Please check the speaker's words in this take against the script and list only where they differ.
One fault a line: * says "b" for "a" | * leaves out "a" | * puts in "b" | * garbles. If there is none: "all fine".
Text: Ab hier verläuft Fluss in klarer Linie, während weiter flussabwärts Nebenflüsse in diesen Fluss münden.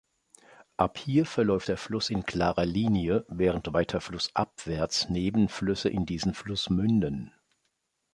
* puts in "der"